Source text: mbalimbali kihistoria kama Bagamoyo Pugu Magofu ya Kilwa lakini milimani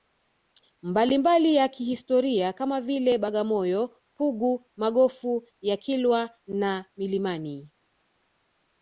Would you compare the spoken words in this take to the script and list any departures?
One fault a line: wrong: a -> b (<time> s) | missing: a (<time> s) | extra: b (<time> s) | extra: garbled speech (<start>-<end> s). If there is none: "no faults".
extra: ya (1.6 s)
extra: vile (2.8 s)
wrong: lakini -> na (6.5 s)